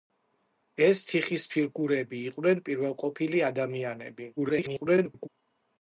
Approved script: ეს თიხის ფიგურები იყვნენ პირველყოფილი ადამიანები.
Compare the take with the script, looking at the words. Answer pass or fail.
fail